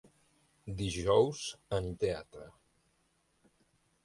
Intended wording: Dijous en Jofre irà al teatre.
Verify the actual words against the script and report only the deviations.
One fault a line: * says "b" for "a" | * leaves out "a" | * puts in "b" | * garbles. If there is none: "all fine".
* leaves out "Jofre irà al"